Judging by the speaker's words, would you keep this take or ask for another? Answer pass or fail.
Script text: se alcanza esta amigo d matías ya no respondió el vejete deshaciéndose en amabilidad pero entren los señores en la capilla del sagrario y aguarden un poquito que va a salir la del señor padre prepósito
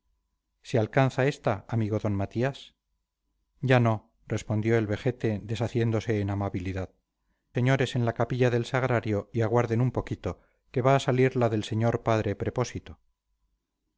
fail